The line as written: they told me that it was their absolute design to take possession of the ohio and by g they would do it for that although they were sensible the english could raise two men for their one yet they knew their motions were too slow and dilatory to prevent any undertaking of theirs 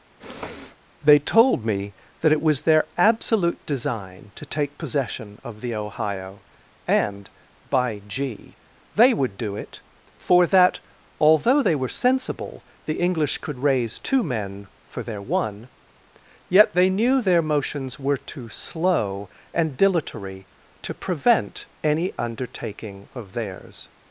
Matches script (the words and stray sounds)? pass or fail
fail